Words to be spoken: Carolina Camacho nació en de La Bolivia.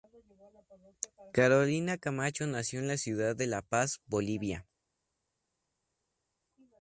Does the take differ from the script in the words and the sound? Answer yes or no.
yes